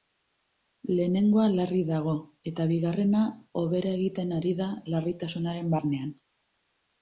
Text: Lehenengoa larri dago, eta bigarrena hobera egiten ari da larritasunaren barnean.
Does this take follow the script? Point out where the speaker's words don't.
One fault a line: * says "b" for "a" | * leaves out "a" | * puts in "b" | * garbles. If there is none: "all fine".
all fine